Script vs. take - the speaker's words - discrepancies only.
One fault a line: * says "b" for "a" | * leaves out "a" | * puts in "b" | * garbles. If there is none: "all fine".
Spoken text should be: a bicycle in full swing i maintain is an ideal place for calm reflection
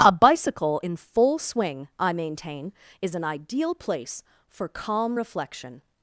all fine